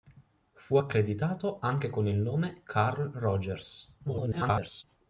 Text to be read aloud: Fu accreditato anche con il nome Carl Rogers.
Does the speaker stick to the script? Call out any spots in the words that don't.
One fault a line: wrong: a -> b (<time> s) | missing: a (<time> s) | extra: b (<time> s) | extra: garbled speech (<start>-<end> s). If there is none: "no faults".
extra: garbled speech (4.1-4.8 s)